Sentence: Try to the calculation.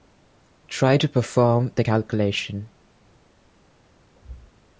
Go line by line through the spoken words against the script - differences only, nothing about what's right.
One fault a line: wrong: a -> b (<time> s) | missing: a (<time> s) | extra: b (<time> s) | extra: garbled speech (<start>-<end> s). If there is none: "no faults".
extra: perform (1.1 s)